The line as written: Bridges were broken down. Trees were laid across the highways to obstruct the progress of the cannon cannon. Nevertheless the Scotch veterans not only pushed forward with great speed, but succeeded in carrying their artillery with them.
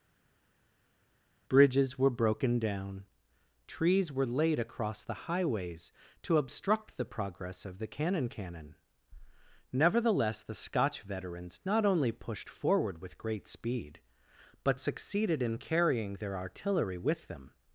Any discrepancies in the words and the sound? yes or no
no